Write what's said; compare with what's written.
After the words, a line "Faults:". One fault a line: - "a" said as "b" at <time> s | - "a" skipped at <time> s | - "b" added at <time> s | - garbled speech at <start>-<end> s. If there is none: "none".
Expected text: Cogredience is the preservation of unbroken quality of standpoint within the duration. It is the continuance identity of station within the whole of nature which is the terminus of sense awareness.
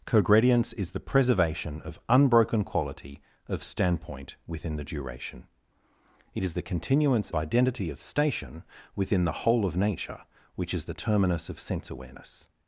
Cogredience is the preservation of unbroken quality of standpoint within the duration. It is the continuance identity of station within the whole of nature which is the terminus of sense awareness.
Faults:
none